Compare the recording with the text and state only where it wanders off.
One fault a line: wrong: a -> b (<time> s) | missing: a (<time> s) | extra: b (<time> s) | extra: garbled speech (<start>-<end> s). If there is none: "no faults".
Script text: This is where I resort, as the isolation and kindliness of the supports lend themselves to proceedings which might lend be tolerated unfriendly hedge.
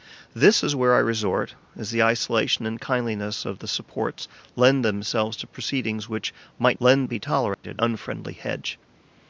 no faults